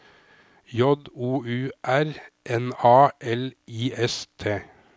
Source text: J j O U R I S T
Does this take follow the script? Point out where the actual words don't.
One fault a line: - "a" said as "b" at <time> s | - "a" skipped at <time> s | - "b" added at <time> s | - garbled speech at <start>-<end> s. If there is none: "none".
- "j" skipped at 0.8 s
- "N A L" added at 2.5 s